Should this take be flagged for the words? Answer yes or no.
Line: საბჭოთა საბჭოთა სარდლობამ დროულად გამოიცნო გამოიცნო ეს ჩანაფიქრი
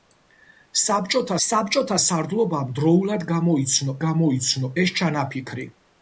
no